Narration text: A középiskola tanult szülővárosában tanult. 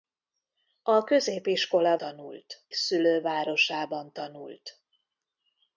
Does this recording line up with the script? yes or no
yes